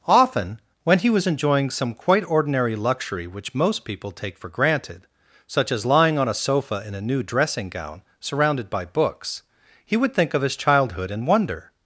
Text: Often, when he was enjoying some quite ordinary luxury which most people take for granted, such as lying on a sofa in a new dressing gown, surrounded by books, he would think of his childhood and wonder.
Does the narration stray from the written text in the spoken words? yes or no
no